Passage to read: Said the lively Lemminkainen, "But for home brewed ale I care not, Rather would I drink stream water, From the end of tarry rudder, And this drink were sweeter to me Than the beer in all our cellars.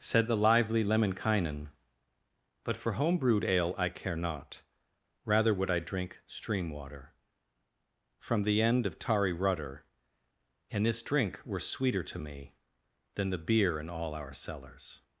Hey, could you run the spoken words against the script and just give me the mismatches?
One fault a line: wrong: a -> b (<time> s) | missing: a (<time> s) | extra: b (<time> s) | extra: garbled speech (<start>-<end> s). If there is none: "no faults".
no faults